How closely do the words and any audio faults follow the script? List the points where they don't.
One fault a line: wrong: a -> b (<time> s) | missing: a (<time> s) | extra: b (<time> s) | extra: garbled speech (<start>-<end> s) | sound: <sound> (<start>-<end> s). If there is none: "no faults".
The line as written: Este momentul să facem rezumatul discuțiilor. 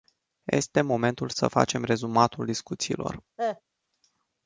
sound: cough (3.4-3.6 s)